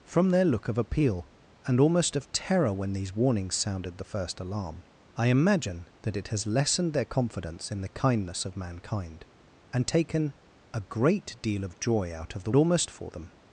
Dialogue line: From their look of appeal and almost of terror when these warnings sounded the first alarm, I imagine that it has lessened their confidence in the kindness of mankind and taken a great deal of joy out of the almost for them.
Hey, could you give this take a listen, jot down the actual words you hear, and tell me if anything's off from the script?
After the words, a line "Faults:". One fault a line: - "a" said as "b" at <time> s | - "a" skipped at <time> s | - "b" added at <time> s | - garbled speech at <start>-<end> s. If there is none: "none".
From their look of appeal and almost of terror when these warnings sounded the first alarm, I imagine that it has lessened their confidence in the kindness of mankind and taken a great deal of joy out of the almost for them.
Faults:
none